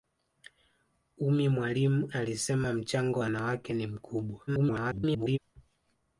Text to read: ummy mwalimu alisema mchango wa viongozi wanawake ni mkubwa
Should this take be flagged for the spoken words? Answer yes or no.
yes